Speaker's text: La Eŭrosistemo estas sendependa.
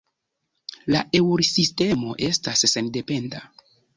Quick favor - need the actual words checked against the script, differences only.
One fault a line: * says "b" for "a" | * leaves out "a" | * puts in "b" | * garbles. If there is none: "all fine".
all fine